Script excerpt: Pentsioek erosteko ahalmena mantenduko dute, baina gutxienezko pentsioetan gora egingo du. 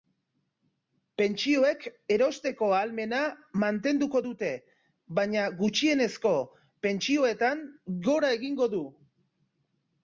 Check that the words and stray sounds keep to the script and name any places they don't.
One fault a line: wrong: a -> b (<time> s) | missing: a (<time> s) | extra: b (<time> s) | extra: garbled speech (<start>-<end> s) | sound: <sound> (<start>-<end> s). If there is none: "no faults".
no faults